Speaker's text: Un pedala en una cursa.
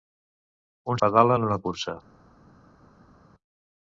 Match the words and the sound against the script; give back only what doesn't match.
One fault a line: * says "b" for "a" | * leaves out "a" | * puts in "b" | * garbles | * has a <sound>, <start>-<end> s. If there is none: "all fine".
all fine